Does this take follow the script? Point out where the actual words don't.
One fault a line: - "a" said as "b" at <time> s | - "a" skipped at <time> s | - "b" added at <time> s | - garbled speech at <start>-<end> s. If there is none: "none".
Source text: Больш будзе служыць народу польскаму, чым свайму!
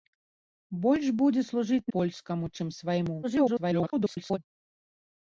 - "народу" skipped at 1.9 s
- garbled speech at 3.2-4.4 s